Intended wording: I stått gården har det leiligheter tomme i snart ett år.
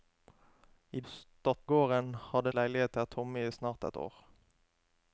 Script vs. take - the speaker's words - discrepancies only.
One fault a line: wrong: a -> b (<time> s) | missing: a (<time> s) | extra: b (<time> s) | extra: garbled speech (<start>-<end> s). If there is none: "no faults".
no faults